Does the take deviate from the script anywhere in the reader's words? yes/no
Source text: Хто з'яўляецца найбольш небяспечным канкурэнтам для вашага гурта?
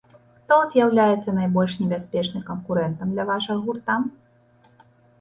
no